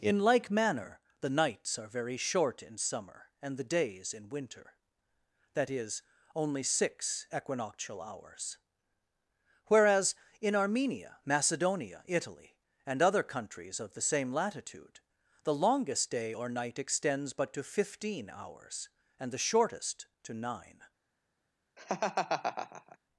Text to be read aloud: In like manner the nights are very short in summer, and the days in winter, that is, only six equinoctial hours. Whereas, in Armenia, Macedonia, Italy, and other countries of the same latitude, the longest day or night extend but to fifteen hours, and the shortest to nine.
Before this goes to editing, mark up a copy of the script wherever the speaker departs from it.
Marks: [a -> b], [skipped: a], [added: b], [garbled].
In like manner the nights are very short in summer, and the days in winter, that is, only six equinoctial hours. Whereas, in Armenia, Macedonia, Italy, and other countries of the same latitude, the longest day or night [extend -> extends] but to fifteen hours, and the shortest to nine.